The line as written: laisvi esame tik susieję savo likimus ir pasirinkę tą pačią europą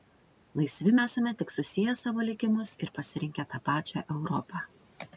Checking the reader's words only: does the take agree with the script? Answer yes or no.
yes